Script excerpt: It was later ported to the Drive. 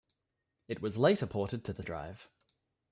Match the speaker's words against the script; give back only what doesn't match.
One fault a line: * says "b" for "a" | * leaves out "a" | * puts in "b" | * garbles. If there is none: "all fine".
all fine